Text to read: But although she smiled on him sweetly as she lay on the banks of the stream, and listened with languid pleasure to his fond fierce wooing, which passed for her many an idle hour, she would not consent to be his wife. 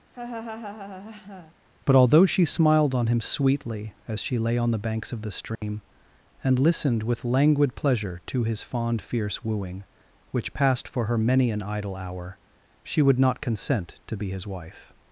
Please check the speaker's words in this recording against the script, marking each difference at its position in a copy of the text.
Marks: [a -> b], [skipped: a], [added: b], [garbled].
But although she smiled on him sweetly as she lay on the banks of the stream, and listened with languid pleasure to his fond fierce wooing, which passed for her many an idle hour, she would not consent to be his wife.